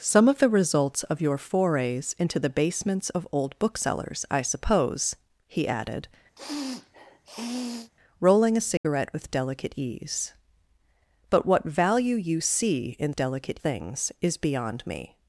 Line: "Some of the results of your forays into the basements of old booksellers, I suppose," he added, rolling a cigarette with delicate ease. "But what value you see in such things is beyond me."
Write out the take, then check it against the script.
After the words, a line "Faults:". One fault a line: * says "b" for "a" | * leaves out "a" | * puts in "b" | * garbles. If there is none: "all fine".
"Some of the results of your forays into the basements of old booksellers, I suppose," he added, rolling a cigarette with delicate ease. "But what value you see in delicate things is beyond me."
Faults:
* says "delicate" for "such"